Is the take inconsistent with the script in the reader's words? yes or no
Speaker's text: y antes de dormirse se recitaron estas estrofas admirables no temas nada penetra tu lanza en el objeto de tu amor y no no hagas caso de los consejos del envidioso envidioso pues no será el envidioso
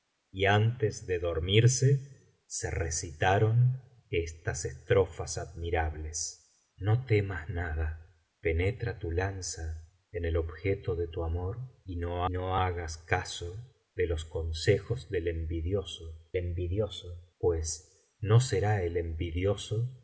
no